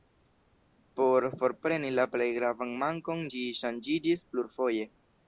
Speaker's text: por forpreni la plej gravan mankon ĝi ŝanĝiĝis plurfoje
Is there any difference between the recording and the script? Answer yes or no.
no